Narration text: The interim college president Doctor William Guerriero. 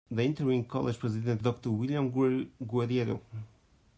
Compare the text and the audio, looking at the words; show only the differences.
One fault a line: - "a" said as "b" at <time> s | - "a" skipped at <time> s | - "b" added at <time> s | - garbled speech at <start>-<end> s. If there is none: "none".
none